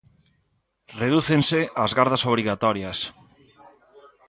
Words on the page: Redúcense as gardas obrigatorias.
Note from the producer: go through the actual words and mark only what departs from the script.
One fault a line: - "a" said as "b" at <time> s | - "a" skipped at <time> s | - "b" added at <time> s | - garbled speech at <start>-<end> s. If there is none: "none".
none